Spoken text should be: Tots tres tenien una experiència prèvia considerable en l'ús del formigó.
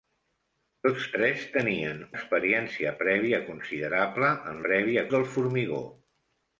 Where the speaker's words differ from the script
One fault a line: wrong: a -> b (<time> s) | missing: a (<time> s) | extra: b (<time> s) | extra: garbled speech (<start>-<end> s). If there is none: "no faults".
missing: una (2.0 s)
wrong: l'ús -> prèvia (4.6 s)